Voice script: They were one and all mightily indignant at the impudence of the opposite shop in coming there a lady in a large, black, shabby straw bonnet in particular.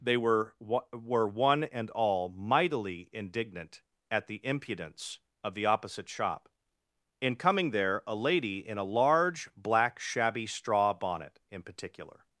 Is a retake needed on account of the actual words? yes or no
yes